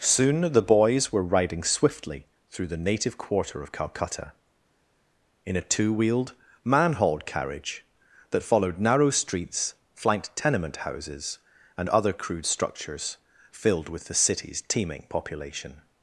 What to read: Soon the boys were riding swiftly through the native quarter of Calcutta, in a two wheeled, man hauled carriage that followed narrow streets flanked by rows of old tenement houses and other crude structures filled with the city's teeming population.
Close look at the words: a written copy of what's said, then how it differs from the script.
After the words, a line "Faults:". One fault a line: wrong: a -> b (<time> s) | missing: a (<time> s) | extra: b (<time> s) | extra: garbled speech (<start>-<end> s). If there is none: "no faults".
Soon the boys were riding swiftly through the native quarter of Calcutta, in a two wheeled, man hauled carriage that followed narrow streets flanked tenement houses and other crude structures filled with the city's teeming population.
Faults:
missing: by rows of old (10.4 s)